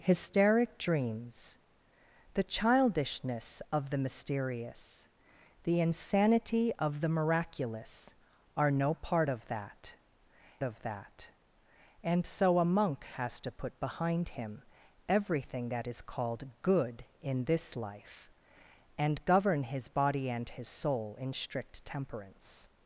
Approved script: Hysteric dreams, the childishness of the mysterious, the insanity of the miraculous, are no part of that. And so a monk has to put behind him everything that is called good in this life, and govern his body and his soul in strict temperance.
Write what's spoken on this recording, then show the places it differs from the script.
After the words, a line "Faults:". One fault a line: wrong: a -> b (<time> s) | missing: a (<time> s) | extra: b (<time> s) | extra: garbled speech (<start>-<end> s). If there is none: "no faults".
Hysteric dreams, the childishness of the mysterious, the insanity of the miraculous, are no part of that of that. And so a monk has to put behind him everything that is called good in this life, and govern his body and his soul in strict temperance.
Faults:
extra: of that (10.6 s)